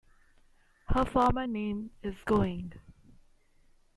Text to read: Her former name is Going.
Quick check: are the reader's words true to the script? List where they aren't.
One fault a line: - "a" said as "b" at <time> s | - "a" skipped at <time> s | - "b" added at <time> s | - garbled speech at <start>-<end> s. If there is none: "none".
none